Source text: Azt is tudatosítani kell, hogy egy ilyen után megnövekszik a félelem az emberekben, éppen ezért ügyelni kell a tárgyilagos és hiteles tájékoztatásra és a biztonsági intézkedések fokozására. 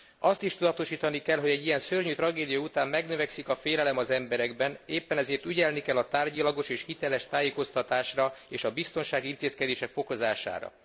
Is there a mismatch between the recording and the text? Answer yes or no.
yes